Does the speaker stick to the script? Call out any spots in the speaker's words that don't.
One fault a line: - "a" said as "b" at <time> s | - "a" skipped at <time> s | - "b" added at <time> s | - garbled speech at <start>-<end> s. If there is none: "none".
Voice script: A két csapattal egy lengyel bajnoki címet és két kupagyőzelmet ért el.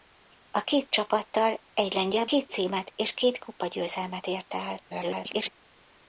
- "bajnoki" said as "két" at 2.2 s
- garbled speech at 4.9-5.5 s